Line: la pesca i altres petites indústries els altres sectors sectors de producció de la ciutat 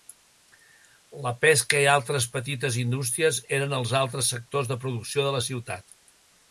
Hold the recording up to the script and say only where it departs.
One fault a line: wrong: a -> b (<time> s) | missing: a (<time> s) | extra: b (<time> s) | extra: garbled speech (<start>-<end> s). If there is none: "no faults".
extra: eren (3.6 s)
missing: sectors (4.7 s)